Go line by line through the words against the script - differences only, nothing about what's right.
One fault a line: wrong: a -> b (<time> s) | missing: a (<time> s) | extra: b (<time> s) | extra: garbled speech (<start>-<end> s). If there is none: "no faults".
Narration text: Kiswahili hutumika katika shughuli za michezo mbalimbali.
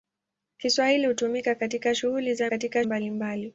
wrong: michezo -> katika (2.4 s)